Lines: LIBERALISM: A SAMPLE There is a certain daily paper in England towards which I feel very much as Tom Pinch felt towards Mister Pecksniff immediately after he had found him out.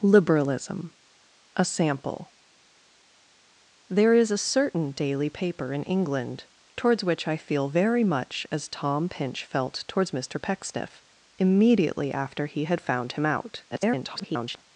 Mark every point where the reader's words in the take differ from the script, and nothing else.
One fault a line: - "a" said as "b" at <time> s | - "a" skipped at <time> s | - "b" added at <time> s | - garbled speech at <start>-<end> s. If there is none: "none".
- garbled speech at 13.7-14.6 s